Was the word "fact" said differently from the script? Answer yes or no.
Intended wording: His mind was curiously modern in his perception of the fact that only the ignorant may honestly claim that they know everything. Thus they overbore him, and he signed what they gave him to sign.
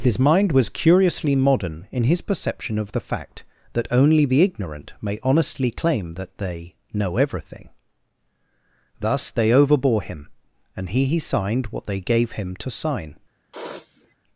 no